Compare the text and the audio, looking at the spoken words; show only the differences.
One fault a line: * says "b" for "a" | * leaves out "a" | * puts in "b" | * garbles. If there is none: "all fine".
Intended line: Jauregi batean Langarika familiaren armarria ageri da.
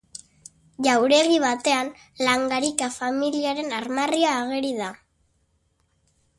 all fine